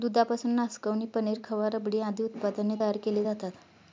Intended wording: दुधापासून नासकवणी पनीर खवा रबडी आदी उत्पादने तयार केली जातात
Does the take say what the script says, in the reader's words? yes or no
yes